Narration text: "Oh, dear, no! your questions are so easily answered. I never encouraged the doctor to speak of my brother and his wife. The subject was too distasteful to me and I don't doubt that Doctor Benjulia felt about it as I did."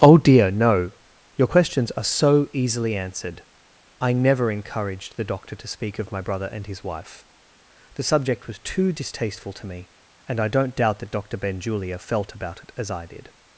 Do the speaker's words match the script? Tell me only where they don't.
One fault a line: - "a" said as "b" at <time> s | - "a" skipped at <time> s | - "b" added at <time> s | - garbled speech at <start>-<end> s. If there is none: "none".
none